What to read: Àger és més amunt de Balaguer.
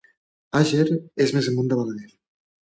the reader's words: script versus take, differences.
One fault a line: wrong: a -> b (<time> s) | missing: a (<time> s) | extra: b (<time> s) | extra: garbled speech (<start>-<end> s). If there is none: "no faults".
no faults